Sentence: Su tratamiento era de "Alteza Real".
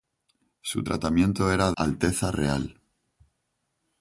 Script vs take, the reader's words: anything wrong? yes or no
yes